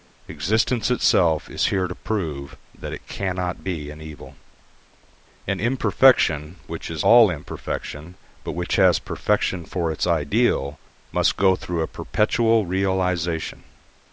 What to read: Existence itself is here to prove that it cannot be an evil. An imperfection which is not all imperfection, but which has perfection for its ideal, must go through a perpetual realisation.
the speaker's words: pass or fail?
fail